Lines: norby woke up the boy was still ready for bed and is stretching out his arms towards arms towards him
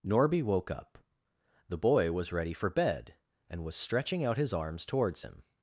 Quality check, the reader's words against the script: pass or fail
fail